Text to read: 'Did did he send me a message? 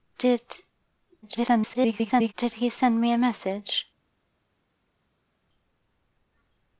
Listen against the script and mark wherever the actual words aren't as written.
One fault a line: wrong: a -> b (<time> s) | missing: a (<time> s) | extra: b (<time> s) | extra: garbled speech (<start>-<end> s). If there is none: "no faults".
extra: garbled speech (1.2-2.3 s)